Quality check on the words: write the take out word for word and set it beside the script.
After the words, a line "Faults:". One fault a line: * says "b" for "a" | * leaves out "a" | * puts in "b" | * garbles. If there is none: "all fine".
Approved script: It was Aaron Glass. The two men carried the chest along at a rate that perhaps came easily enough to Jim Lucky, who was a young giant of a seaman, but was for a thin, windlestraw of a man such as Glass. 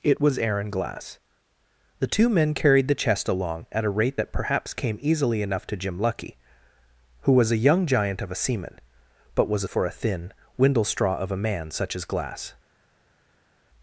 It was Aaron Glass. The two men carried the chest along at a rate that perhaps came easily enough to Jim Lucky, who was a young giant of a seaman, but was for a thin, windlestraw of a man such as Glass.
Faults:
all fine